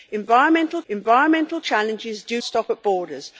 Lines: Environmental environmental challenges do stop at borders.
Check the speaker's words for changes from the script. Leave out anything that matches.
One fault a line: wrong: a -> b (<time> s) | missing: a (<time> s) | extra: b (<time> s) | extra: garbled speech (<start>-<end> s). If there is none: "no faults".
no faults